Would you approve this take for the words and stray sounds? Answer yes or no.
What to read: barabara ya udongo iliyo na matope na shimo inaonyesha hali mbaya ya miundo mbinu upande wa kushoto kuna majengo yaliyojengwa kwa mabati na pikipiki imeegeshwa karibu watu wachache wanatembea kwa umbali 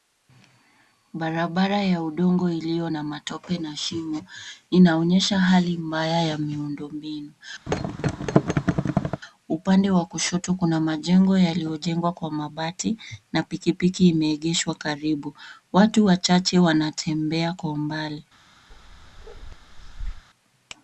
no